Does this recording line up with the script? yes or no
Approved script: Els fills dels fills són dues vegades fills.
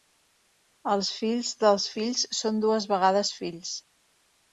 yes